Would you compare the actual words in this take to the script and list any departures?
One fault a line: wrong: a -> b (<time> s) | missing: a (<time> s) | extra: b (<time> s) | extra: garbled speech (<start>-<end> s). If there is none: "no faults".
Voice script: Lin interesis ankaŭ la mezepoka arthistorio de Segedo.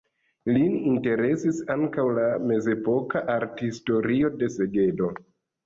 no faults